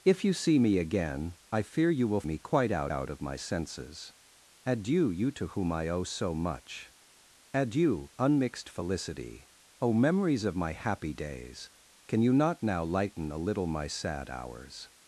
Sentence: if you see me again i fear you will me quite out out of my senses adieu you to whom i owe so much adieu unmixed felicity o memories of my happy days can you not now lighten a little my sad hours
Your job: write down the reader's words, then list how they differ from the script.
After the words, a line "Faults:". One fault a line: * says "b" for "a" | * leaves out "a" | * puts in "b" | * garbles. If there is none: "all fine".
if you see me again i fear you will me quite out out of my senses adieu you to whom i owe so much adieu unmixed felicity o memories of my happy days can you not now lighten a little my sad hours
Faults:
all fine